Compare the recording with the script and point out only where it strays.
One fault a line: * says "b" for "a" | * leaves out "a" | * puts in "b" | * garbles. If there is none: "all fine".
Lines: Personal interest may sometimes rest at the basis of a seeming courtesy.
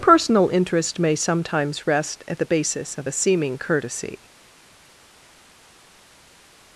all fine